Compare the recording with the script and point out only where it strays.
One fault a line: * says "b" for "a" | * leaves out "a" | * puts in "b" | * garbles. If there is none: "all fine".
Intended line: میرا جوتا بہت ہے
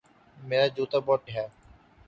all fine